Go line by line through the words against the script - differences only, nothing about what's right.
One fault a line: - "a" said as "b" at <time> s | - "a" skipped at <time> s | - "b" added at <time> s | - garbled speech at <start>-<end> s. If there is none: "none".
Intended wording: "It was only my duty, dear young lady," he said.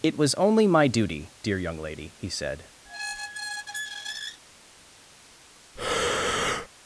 none